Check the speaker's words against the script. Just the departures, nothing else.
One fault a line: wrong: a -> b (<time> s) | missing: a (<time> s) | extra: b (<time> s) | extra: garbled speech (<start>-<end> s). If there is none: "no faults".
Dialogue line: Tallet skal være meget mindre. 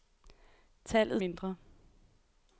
missing: skal være meget (1.2 s)